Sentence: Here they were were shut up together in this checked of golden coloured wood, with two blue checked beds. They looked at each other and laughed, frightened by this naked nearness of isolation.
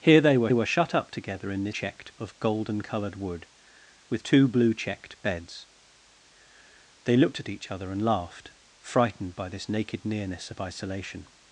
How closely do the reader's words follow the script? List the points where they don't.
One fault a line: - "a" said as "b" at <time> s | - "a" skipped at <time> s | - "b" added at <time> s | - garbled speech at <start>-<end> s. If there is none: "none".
none